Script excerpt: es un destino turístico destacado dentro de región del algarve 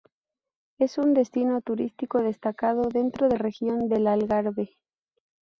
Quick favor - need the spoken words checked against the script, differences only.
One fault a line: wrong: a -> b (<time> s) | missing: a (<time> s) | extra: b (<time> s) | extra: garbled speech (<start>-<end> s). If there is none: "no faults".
no faults